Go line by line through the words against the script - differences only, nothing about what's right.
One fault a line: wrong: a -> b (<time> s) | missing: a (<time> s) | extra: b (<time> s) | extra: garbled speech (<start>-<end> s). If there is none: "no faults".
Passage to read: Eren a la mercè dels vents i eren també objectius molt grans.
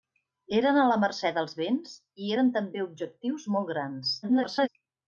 extra: garbled speech (4.2-4.7 s)